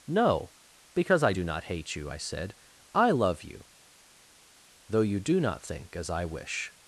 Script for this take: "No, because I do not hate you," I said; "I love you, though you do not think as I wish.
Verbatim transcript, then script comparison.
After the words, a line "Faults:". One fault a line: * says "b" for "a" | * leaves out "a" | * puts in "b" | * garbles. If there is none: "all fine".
"No, because I do not hate you," I said; "I love you, though you do not think as I wish.
Faults:
all fine